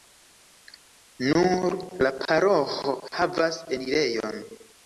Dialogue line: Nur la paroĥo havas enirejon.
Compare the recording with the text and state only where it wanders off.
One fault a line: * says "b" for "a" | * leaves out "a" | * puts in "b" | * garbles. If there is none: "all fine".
all fine